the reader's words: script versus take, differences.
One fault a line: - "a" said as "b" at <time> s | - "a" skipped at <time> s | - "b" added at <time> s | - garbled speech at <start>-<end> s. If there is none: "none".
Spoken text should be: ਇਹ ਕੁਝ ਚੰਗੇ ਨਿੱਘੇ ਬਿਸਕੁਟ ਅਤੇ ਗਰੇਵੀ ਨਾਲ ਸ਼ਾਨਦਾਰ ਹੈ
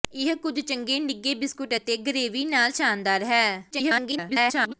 - garbled speech at 3.7-4.7 s